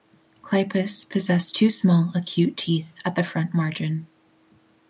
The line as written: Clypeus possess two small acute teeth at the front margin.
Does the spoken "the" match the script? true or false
true